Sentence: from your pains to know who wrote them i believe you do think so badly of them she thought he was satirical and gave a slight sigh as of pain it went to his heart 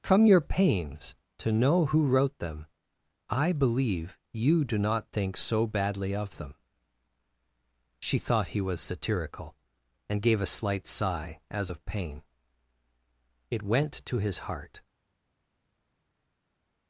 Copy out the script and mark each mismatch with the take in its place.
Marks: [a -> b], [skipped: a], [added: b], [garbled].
from your pains to know who wrote them i believe you do [added: not] think so badly of them she thought he was satirical and gave a slight sigh as of pain it went to his heart